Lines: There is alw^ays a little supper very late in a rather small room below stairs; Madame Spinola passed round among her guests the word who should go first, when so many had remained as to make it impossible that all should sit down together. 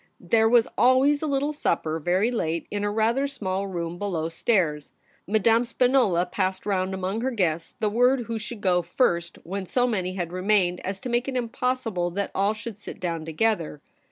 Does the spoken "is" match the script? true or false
false